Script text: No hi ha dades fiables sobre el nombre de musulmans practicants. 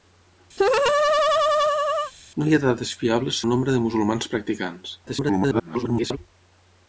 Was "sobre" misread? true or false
true